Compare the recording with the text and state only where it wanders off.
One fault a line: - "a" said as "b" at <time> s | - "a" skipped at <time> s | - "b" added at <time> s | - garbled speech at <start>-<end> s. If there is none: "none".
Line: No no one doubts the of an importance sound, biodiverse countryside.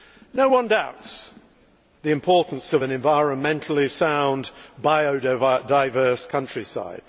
- "no" skipped at 0.5 s
- "importance" added at 2.1 s
- "importance" said as "environmentally" at 2.9 s